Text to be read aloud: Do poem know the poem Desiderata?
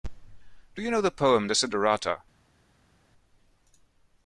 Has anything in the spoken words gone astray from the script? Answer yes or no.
yes